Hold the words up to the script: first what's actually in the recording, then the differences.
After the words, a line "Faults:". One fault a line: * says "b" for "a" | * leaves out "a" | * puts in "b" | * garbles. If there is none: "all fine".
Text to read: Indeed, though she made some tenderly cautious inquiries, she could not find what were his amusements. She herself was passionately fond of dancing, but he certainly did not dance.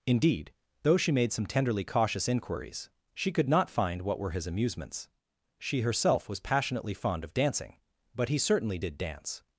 Indeed, though she made some tenderly cautious inquiries, she could not find what were his amusements. She herself was passionately fond of dancing, but he certainly did dance.
Faults:
* leaves out "not"